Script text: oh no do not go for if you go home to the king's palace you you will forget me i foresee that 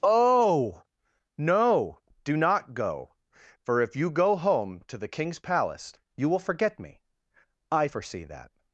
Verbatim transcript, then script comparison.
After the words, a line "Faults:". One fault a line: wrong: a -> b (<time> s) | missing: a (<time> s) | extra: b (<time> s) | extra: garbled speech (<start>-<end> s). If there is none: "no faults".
oh no do not go for if you go home to the king's palace you will forget me i foresee that
Faults:
missing: you (6.3 s)